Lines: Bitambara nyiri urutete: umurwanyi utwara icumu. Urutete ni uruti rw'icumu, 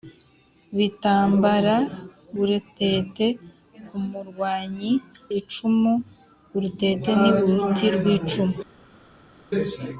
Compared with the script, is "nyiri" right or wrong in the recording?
wrong